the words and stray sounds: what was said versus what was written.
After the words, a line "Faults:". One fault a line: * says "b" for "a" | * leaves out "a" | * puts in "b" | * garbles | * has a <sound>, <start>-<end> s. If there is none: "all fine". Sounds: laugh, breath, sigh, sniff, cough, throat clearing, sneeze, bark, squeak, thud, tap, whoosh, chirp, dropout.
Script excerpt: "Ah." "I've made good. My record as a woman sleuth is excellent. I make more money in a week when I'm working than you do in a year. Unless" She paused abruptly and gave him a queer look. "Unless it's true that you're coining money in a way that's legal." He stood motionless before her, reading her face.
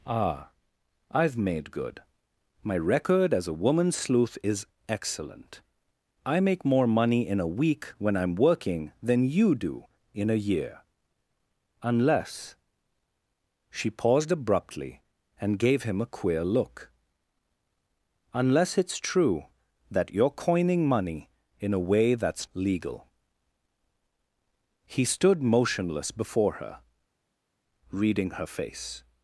"Ah." "I've made good. My record as a woman sleuth is excellent. I make more money in a week when I'm working than you do in a year. Unless" She paused abruptly and gave him a queer look. "Unless it's true that you're coining money in a way that's legal." He stood motionless before her, reading her face.
Faults:
all fine